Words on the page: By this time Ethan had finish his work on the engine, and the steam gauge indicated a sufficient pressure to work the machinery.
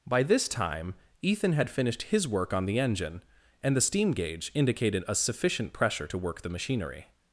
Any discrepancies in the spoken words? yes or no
yes